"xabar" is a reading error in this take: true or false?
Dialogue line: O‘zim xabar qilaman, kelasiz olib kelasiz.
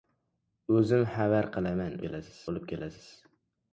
false